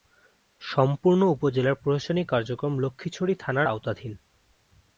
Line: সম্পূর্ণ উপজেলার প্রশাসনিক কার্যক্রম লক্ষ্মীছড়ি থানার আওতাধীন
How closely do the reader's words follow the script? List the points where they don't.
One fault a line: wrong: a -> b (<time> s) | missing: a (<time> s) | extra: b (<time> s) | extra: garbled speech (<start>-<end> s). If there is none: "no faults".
no faults